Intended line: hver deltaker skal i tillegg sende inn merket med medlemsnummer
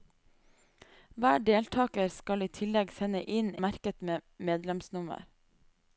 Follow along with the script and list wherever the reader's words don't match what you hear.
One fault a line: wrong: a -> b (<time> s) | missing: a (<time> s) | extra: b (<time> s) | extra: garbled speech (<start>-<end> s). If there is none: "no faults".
no faults